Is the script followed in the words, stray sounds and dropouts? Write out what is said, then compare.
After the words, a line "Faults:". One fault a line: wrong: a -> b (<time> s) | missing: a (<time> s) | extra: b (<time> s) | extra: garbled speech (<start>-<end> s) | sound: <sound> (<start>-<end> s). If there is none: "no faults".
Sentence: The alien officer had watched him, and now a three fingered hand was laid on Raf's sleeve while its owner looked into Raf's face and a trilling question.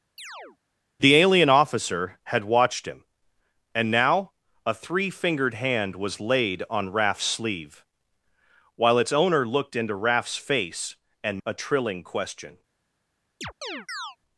The alien officer had watched him, and now a three fingered hand was laid on Raf's sleeve while its owner looked into Raf's face and a trilling question.
Faults:
sound: chirp (0.2-0.6 s)
sound: chirp (13.4-14.2 s)